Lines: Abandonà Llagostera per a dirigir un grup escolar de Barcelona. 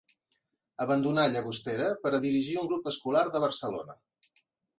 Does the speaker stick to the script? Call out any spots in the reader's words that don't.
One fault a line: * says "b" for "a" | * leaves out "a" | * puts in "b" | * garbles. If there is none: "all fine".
all fine